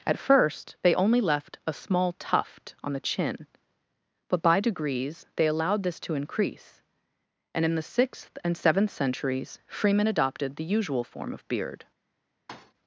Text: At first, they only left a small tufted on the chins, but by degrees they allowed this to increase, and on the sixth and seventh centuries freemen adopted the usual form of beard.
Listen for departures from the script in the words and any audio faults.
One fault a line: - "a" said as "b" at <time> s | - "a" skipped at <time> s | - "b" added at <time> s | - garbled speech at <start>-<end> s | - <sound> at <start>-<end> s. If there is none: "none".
- "tufted" said as "tuft" at 2.1 s
- "chins" said as "chin" at 3.0 s
- "on" said as "in" at 7.6 s
- thud at 12.5-12.7 s